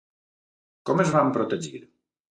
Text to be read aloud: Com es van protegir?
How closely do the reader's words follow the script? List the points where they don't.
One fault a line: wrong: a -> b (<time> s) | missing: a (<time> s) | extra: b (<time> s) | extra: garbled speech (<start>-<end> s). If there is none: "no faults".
no faults